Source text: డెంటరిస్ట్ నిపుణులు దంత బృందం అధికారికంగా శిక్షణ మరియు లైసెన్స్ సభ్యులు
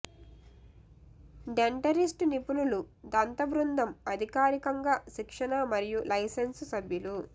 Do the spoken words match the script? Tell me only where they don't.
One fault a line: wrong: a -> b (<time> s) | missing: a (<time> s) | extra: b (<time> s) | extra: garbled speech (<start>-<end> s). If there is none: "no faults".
no faults